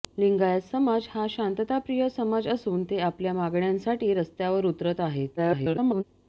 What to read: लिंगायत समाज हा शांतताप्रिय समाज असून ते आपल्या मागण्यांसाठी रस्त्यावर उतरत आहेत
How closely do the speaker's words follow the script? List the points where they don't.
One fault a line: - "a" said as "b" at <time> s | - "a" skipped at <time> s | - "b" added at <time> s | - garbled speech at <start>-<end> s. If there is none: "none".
- garbled speech at 5.4-6.0 s